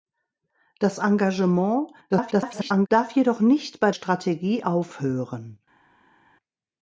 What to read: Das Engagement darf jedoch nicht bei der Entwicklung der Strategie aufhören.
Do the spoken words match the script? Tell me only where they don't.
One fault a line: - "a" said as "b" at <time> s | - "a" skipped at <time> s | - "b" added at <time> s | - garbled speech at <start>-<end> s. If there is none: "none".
- garbled speech at 2.1-2.9 s
- "der Entwicklung der" skipped at 3.9 s